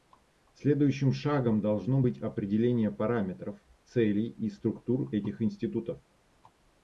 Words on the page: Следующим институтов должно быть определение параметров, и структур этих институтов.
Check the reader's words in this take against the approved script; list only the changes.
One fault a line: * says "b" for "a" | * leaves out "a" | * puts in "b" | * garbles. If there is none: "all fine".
* says "шагом" for "институтов"
* puts in "целей"